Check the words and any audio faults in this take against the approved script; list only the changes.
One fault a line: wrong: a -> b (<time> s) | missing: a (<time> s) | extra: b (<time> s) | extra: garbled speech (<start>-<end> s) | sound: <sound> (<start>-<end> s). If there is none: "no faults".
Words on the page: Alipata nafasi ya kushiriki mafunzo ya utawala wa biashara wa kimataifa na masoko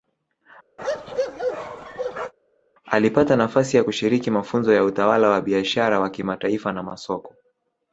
sound: bark (0.8-2.3 s)